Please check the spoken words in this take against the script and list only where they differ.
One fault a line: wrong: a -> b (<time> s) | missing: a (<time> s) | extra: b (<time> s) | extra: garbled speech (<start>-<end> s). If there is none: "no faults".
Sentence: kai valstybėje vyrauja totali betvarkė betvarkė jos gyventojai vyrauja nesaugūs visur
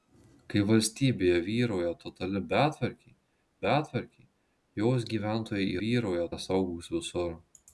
no faults